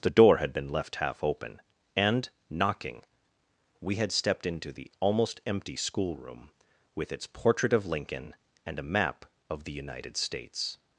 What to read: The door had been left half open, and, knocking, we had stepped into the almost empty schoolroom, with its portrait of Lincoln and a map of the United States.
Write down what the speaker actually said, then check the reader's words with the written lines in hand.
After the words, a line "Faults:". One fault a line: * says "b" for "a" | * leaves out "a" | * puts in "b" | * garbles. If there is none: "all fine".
The door had been left half open, and, knocking, we had stepped into the almost empty schoolroom, with its portrait of Lincoln and a map of the United States.
Faults:
all fine